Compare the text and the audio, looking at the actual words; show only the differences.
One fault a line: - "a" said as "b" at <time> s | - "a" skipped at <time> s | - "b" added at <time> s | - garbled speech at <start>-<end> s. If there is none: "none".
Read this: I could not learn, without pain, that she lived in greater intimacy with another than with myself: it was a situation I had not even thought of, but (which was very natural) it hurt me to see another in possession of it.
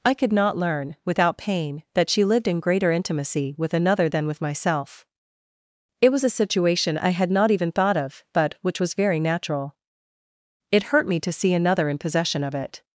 none